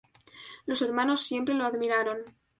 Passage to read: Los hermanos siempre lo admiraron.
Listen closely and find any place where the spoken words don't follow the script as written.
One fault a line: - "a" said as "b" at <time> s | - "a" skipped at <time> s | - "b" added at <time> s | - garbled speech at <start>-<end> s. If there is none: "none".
none